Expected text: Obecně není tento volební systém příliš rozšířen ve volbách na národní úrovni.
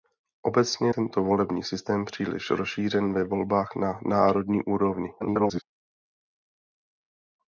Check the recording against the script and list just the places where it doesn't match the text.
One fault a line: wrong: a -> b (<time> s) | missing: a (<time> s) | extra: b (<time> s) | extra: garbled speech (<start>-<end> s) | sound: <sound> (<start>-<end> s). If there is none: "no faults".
missing: není (0.9 s)
extra: garbled speech (5.2-5.6 s)